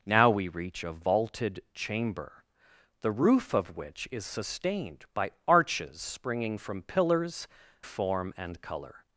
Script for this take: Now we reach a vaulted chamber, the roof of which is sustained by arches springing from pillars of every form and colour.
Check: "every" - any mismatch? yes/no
yes